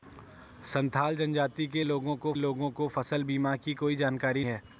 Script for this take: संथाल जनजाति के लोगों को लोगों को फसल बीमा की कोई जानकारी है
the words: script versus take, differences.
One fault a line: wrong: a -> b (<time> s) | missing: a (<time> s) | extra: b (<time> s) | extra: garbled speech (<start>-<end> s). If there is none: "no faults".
no faults